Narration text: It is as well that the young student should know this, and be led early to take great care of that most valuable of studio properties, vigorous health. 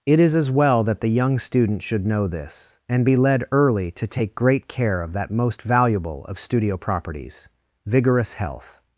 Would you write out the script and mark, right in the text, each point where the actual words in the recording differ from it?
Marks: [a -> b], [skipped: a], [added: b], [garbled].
It is as well that the young student should know this, and be led early to take great care of that most valuable of studio properties, vigorous health.